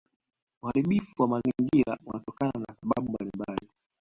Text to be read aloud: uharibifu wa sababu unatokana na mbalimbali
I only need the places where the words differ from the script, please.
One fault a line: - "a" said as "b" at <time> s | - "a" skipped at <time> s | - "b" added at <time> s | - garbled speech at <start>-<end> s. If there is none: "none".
- "sababu" said as "mazingira" at 1.3 s
- "sababu" added at 2.8 s